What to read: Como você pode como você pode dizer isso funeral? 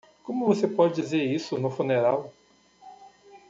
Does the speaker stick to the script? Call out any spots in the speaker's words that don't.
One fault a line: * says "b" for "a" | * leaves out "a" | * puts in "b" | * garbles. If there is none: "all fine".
* leaves out "como você pode"
* puts in "no"